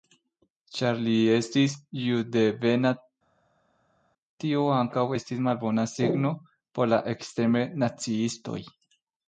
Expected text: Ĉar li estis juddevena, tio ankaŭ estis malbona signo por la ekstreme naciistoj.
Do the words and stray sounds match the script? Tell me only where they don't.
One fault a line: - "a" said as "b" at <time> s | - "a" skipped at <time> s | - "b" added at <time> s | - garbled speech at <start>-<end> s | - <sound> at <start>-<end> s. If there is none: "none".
none